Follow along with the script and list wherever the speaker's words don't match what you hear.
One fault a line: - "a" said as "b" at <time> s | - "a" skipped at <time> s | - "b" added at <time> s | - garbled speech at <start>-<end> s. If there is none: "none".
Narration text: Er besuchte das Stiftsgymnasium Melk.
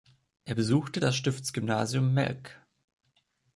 none